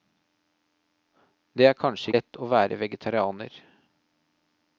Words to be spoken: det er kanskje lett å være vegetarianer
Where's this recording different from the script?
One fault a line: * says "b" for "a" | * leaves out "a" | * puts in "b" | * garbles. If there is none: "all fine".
all fine